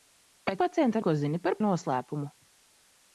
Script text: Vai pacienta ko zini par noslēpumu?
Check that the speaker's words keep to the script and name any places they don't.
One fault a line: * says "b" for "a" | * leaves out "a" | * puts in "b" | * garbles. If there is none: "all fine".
all fine